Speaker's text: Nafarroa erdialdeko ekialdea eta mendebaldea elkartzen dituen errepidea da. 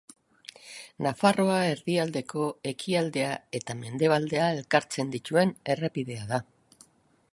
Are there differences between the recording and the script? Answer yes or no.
no